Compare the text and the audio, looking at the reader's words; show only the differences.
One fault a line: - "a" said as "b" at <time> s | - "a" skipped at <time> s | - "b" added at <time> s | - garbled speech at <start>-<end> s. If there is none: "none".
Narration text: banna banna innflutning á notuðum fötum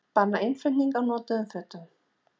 - "banna" skipped at 0.4 s